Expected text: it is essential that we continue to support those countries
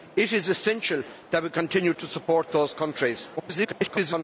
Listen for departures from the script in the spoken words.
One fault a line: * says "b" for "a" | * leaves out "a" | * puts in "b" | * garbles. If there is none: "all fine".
* garbles